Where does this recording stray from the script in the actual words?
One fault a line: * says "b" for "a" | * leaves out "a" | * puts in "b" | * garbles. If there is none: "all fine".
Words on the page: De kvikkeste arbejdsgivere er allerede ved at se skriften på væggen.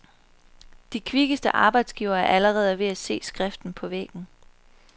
all fine